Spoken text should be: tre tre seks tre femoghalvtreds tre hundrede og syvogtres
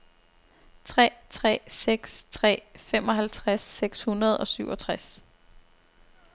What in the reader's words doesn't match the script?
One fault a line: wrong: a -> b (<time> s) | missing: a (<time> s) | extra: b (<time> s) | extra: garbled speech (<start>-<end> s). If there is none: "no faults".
wrong: tre -> seks (3.6 s)